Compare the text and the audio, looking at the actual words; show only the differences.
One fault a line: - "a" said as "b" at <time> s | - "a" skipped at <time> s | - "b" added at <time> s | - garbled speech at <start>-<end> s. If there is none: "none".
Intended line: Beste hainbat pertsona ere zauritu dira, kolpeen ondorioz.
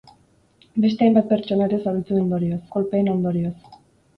- "dira" said as "ondorioz" at 2.2 s